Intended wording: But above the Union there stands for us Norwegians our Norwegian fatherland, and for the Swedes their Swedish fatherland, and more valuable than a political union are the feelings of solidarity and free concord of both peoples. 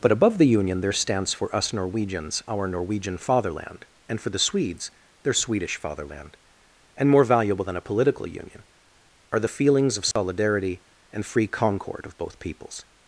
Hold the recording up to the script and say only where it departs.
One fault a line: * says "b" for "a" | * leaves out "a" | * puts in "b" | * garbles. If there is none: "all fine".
all fine